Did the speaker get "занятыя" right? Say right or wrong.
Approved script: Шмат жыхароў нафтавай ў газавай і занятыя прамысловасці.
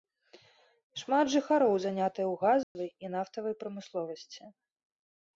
wrong